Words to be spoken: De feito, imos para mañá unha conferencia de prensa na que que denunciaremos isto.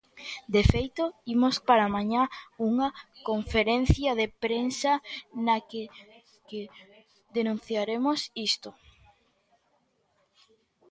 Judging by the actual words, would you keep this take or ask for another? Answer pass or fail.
pass